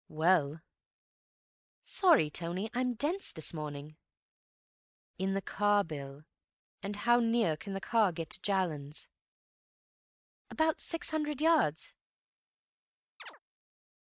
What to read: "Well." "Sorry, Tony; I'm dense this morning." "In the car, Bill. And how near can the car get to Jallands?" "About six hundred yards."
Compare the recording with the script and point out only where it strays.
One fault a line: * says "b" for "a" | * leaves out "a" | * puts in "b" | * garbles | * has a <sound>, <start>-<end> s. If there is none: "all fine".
* has a chirp, 13.2-13.4 s